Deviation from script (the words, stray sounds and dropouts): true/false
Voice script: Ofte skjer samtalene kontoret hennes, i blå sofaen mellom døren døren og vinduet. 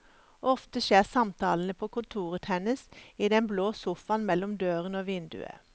true